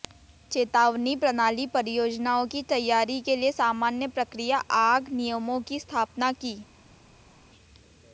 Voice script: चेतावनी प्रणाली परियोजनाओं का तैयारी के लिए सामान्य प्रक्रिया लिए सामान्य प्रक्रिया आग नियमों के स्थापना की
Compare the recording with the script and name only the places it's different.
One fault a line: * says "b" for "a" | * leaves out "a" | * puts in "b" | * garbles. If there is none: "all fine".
* says "की" for "का"
* leaves out "लिए सामान्य प्रक्रिया"
* says "की" for "के"